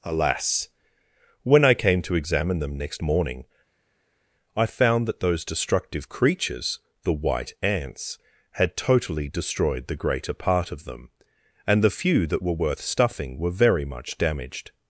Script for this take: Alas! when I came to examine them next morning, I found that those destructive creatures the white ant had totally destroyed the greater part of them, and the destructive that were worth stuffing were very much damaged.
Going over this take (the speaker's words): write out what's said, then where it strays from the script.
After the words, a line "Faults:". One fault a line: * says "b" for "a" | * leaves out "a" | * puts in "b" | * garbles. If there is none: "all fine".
Alas! when I came to examine them next morning, I found that those destructive creatures the white ants had totally destroyed the greater part of them, and the few that were worth stuffing were very much damaged.
Faults:
* says "ants" for "ant"
* says "few" for "destructive"